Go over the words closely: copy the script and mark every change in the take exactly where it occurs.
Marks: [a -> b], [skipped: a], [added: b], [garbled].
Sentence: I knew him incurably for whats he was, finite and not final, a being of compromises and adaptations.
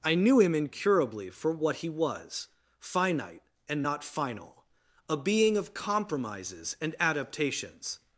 I knew him incurably for [whats -> what] he was, finite and not final, a being of compromises and adaptations.